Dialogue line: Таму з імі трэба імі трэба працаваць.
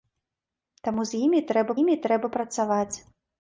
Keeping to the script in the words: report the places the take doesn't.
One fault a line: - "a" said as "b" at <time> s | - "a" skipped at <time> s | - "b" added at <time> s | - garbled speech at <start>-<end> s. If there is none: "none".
none